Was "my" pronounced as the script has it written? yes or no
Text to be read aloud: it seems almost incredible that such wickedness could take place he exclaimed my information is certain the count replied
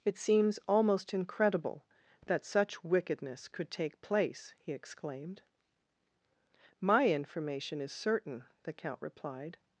yes